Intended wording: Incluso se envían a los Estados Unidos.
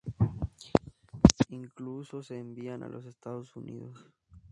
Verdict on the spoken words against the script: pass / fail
pass